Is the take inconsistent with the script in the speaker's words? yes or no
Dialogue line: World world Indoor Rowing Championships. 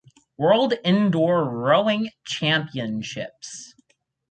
yes